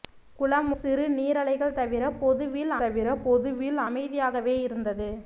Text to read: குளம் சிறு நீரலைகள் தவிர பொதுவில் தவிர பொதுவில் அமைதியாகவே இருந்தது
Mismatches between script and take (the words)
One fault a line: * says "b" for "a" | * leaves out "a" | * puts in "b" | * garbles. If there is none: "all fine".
all fine